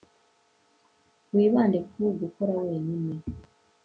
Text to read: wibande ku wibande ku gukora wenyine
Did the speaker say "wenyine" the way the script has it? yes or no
yes